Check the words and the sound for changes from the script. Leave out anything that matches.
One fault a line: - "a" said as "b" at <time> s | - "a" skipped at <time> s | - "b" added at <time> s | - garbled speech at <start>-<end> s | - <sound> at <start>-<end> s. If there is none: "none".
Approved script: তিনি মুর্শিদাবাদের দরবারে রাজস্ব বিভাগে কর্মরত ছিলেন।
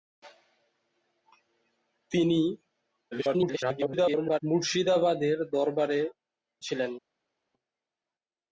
- garbled speech at 3.1-4.4 s
- "রাজস্ব বিভাগে কর্মরত" skipped at 6.0 s